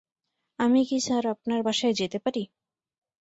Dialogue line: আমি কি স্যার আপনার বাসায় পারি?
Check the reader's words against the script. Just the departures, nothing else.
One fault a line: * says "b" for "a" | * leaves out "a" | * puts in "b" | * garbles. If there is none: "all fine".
* puts in "যেতে"